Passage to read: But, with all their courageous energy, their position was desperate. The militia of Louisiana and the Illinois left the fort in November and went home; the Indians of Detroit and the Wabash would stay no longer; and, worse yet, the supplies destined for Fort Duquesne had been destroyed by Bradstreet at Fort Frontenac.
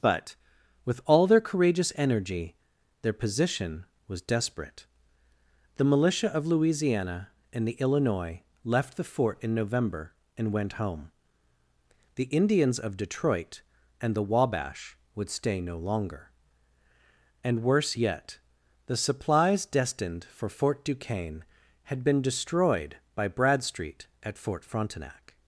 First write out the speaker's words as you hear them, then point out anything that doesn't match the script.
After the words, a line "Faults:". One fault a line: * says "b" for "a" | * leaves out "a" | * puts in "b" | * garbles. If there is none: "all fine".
But, with all their courageous energy, their position was desperate. The militia of Louisiana and the Illinois left the fort in November and went home; the Indians of Detroit and the Wabash would stay no longer; and, worse yet, the supplies destined for Fort Duquesne had been destroyed by Bradstreet at Fort Frontenac.
Faults:
all fine